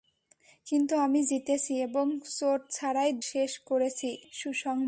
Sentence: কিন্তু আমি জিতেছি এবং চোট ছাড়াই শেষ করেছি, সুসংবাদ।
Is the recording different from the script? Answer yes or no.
no